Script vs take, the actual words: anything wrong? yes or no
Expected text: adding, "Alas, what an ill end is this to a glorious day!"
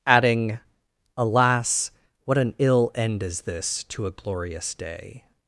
no